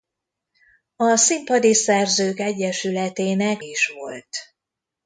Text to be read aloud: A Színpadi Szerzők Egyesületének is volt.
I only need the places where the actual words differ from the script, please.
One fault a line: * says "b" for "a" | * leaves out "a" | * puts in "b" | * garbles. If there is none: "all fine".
all fine